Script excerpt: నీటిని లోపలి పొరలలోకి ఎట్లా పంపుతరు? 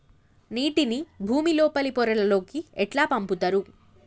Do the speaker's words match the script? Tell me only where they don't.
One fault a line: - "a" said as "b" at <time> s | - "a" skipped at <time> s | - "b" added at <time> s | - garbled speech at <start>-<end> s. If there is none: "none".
- "భుమి" added at 1.2 s